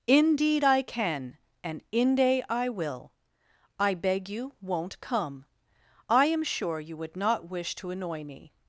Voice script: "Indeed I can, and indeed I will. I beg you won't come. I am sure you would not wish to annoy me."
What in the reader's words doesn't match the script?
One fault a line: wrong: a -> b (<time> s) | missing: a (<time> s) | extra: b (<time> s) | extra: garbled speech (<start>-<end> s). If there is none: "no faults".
wrong: indeed -> inde (1.9 s)